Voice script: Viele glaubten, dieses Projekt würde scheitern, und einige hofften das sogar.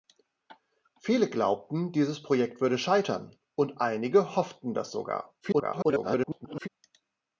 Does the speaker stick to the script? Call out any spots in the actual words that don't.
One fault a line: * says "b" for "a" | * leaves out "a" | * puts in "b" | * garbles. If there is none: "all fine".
* garbles